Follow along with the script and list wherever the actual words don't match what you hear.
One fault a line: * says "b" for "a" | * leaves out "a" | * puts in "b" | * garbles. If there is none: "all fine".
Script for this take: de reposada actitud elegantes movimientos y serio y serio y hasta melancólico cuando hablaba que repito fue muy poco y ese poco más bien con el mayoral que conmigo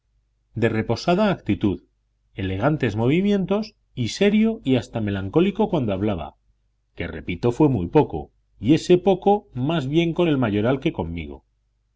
* leaves out "serio y"